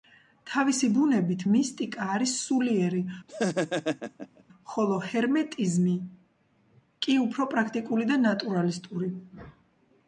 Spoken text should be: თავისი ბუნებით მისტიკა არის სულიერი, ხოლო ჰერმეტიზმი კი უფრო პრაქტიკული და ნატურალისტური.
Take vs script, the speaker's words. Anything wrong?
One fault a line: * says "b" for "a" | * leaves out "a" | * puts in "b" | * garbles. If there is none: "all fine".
all fine